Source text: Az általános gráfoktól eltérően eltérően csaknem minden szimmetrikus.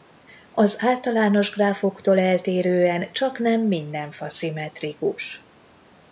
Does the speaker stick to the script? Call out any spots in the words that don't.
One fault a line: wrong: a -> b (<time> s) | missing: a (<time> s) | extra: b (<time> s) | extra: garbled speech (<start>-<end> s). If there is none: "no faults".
missing: eltérően (3.1 s)
extra: fa (4.1 s)